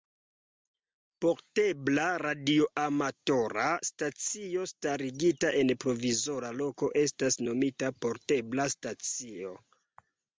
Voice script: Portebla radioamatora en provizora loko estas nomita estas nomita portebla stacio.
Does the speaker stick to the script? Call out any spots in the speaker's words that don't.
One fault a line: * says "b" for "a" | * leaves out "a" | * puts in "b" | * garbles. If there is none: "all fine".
* puts in "stacio starigita"
* leaves out "estas nomita"